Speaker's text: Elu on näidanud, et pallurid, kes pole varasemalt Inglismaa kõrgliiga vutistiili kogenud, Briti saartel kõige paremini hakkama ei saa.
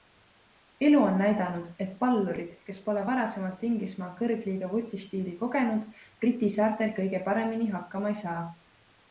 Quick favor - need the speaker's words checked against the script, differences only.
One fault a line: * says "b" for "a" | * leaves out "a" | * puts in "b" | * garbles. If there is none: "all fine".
all fine